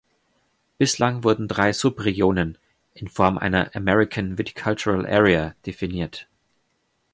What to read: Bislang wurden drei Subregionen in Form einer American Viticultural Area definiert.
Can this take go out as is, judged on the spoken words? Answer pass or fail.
pass